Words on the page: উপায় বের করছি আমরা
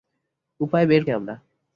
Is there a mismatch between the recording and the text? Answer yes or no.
yes